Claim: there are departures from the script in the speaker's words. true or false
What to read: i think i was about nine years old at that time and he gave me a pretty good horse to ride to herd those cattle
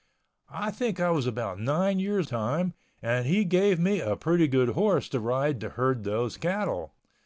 true